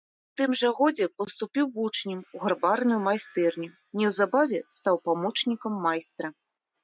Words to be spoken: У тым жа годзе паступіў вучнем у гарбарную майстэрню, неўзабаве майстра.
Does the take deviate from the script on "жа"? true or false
false